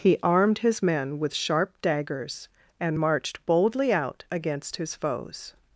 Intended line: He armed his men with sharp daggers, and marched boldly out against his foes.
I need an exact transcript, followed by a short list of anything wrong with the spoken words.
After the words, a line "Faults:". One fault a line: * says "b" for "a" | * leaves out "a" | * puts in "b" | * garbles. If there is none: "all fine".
He armed his men with sharp daggers, and marched boldly out against his foes.
Faults:
all fine